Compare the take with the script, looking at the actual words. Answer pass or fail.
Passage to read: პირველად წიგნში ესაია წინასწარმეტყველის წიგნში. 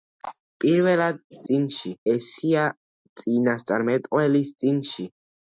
pass